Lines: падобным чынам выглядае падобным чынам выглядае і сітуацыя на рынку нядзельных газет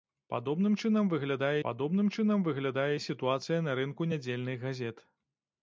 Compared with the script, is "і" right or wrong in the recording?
right